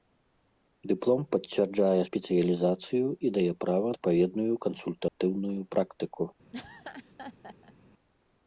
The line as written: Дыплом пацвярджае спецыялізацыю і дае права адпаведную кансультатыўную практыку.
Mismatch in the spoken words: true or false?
false